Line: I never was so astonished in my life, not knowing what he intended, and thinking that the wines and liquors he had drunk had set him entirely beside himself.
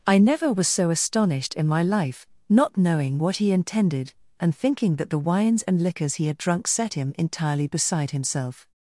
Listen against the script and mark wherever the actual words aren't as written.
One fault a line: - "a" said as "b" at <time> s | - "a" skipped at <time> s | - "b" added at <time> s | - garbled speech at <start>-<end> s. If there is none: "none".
- "had" skipped at 6.7 s